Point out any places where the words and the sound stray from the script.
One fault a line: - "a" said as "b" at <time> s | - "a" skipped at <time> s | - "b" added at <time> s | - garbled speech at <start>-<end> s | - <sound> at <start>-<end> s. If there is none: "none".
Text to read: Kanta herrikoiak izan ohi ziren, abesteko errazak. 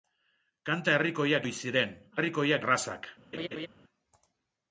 - "izan" skipped at 1.4 s
- "abesteko" said as "herrikoiak" at 2.2 s
- laugh at 3.3-3.7 s